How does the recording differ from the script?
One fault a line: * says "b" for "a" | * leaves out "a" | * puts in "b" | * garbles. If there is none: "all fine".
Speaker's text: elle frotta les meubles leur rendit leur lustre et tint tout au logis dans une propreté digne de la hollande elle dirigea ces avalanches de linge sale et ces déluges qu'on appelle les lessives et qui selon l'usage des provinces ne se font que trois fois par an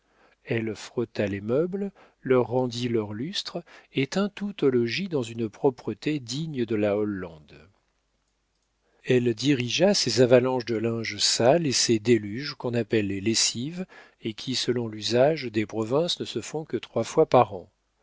all fine